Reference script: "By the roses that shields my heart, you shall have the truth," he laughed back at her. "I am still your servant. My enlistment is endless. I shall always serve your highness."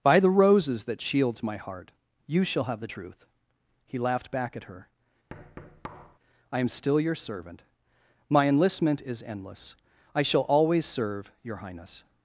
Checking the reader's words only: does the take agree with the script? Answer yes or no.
yes